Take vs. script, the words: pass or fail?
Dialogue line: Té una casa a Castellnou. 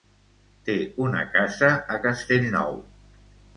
pass